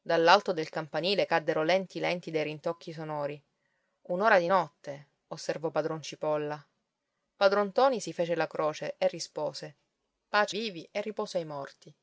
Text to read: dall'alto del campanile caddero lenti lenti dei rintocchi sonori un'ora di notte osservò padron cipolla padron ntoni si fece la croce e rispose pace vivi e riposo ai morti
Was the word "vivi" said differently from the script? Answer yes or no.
no